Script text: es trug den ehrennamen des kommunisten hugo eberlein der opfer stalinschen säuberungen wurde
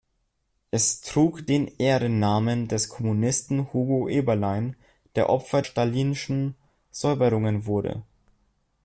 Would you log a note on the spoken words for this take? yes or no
no